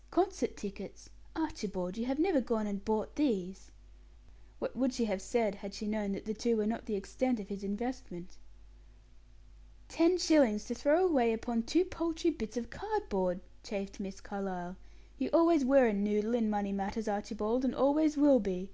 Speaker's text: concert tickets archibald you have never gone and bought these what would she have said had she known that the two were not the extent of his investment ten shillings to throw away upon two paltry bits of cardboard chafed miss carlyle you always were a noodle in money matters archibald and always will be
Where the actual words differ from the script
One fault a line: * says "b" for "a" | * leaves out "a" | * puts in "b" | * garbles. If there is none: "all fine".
all fine